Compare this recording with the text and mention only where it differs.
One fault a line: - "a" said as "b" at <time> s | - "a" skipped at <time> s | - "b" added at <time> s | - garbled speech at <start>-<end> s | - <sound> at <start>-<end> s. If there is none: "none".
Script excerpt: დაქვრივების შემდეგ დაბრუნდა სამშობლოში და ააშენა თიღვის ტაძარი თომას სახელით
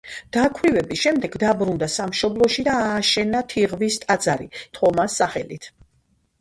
none